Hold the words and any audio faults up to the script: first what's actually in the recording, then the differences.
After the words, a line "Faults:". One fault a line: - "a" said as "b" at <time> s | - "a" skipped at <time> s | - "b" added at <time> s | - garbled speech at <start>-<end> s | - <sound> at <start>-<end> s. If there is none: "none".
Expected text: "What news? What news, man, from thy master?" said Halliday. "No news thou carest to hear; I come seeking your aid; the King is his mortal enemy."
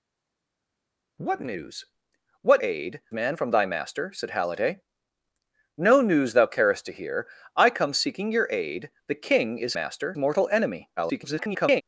"What news? What aid, man, from thy master?" said Halliday. "No news thou carest to hear; I come seeking your aid; the King is master mortal enemy." [garbled]
Faults:
- "news" said as "aid" at 2.6 s
- "his" said as "master" at 9.7 s
- garbled speech at 11.0-11.8 s